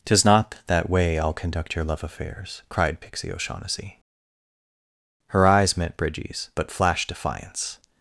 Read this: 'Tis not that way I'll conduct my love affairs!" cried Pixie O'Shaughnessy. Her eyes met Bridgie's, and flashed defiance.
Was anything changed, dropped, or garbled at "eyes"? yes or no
no